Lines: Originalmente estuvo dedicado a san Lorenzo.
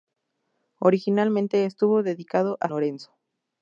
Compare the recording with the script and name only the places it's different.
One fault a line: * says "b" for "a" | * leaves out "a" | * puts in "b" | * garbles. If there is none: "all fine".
* leaves out "san"